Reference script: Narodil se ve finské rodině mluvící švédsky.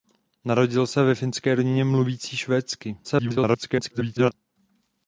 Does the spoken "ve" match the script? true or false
true